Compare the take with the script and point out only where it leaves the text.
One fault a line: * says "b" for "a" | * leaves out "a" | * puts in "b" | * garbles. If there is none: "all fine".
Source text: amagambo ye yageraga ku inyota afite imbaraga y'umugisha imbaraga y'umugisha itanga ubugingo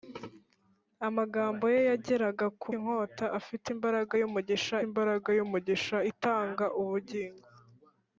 all fine